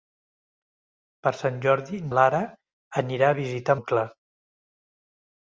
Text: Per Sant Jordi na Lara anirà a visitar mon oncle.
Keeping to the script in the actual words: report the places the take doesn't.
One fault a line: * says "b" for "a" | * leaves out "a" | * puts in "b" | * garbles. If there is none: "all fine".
* leaves out "na"
* leaves out "mon"